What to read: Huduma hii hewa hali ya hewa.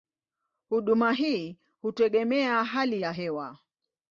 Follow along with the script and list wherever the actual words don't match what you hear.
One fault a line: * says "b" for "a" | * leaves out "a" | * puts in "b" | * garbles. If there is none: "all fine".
* says "hutegemea" for "hewa"